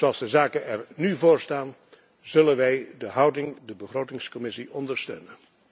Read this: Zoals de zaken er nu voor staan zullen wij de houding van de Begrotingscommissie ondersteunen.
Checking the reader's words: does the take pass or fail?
fail